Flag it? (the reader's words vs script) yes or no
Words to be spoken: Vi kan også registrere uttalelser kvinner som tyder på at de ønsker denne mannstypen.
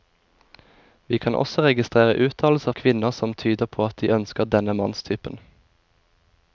no